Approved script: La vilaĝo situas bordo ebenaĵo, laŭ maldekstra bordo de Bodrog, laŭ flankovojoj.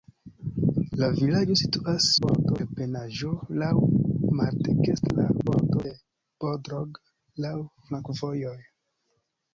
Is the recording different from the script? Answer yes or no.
no